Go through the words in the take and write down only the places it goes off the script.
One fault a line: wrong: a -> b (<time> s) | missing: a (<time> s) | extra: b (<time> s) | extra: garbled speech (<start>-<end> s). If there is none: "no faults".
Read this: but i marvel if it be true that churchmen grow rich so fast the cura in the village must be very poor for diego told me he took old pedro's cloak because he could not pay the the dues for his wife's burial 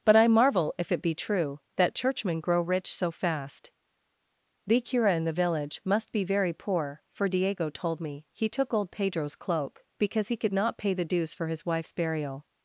missing: the (11.0 s)